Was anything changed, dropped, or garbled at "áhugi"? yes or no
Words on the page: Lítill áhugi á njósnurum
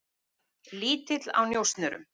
yes